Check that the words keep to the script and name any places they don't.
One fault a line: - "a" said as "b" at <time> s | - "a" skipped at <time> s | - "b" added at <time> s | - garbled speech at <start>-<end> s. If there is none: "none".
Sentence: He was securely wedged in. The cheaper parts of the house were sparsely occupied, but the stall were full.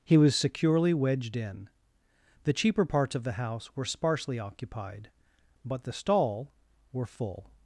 none